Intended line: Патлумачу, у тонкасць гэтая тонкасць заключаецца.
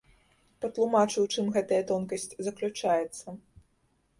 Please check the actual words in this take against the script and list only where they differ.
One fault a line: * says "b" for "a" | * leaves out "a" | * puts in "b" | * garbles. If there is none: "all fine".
* says "чым" for "тонкасць"